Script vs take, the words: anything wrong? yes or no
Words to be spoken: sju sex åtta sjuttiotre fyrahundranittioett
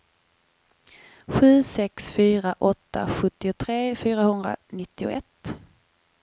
yes